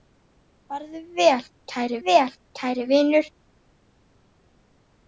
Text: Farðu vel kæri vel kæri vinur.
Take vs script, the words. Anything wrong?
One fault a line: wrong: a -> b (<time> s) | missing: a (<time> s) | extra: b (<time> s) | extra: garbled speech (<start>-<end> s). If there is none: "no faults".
no faults